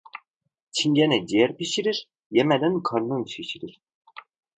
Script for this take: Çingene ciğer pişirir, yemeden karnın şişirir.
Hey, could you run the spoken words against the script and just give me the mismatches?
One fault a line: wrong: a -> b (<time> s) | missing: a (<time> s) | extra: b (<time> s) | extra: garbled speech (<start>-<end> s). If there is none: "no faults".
no faults